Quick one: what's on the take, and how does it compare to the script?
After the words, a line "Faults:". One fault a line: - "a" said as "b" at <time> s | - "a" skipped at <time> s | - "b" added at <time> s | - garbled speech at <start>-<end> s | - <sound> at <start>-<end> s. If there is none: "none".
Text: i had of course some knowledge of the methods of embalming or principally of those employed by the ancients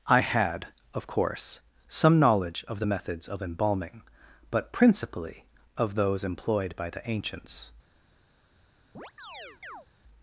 i had of course some knowledge of the methods of embalming but principally of those employed by the ancients
Faults:
- "or" said as "but" at 4.5 s
- chirp at 8.9-9.9 s